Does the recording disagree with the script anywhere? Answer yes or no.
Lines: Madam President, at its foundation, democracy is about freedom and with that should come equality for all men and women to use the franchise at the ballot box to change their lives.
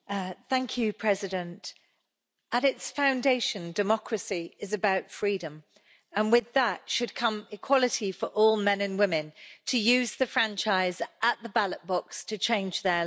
no